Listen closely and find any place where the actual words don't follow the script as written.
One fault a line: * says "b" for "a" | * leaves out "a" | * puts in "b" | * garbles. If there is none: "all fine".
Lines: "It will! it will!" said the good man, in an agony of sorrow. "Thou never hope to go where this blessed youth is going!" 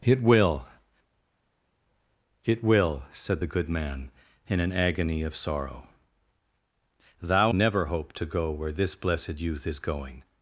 all fine